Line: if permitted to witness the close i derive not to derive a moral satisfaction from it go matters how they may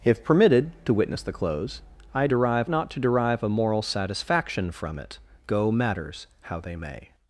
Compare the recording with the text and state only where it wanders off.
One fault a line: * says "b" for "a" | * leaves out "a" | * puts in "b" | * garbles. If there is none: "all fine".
all fine